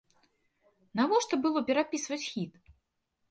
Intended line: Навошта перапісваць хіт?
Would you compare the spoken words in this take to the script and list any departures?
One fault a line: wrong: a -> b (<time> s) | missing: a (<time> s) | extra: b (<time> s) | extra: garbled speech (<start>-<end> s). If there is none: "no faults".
extra: было (1.4 s)